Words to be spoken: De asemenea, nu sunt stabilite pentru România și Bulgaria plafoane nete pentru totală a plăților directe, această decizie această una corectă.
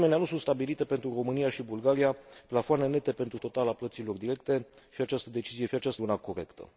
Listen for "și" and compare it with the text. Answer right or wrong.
right